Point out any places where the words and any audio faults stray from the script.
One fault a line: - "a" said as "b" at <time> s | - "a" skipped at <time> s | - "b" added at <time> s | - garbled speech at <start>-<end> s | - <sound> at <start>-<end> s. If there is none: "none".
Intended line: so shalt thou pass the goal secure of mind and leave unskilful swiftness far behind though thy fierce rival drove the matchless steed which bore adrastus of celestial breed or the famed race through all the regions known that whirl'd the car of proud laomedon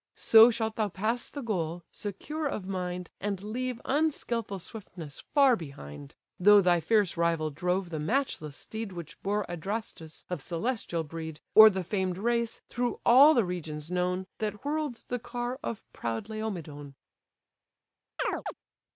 - chirp at 18.2-18.5 s